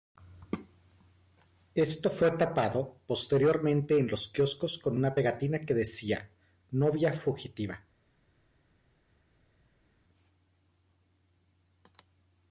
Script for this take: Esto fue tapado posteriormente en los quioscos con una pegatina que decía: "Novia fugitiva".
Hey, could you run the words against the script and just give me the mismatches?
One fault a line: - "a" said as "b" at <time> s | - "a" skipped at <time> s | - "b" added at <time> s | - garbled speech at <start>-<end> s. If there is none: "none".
none